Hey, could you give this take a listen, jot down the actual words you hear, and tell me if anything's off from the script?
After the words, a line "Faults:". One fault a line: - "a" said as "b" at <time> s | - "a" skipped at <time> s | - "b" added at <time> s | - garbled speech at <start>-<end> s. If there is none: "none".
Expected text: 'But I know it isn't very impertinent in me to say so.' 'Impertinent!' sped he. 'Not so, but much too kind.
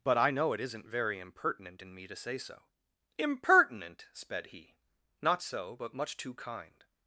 'But I know it isn't very impertinent in me to say so.' 'Impertinent!' sped he. 'Not so, but much too kind.
Faults:
none